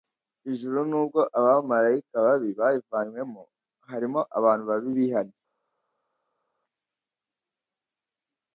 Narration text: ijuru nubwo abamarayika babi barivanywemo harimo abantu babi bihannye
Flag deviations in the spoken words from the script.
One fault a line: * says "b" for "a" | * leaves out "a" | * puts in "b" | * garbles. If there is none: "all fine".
all fine